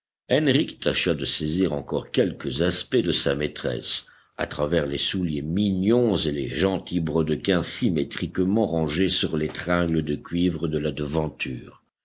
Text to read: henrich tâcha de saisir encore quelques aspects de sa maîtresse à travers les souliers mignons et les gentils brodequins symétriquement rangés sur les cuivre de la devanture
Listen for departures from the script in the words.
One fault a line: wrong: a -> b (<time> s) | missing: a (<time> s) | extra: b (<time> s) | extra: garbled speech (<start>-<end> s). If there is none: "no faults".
extra: tringles de (9.5 s)